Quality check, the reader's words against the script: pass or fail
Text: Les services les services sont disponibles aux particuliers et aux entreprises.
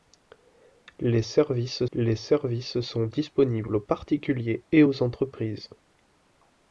pass